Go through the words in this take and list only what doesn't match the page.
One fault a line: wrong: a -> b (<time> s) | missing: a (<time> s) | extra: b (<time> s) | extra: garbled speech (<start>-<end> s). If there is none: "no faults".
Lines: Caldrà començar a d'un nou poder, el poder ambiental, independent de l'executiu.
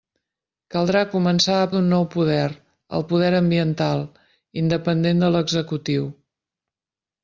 no faults